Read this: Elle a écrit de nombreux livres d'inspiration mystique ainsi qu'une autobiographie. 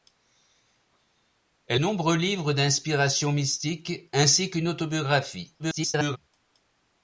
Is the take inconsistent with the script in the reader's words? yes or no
yes